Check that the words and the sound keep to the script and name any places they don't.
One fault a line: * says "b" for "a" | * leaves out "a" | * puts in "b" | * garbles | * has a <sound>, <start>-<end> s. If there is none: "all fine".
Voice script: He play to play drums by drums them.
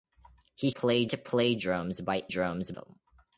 all fine